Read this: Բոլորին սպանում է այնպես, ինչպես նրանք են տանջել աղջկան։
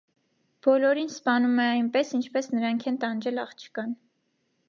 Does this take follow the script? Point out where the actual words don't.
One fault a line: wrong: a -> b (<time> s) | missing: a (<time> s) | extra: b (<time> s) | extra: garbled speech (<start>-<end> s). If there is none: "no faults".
no faults